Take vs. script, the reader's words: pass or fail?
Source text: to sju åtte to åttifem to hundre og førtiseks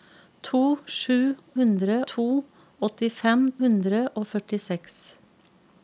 fail